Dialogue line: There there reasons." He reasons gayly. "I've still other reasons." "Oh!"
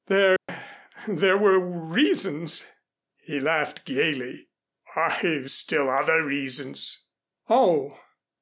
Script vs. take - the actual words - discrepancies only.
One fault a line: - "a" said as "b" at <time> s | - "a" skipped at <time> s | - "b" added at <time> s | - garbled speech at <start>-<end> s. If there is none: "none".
- "were" added at 1.4 s
- "reasons" said as "laughed" at 3.4 s